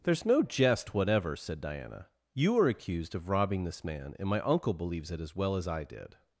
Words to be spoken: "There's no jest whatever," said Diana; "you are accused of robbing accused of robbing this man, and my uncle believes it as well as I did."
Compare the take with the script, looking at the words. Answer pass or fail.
fail